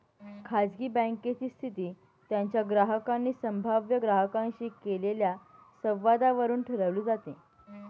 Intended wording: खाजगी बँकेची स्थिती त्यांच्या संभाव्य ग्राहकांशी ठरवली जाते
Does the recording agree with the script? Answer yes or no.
no